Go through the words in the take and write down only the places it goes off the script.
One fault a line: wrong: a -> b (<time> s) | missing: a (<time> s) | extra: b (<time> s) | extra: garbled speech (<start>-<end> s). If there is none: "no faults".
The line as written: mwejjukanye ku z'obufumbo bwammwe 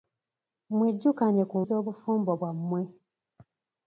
no faults